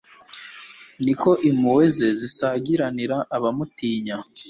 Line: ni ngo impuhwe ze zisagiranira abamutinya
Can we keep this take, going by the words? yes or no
no